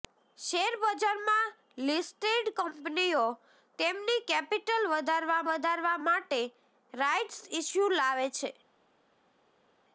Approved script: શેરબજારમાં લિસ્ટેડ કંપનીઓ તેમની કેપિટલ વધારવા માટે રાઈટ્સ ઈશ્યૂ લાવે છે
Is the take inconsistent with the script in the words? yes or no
yes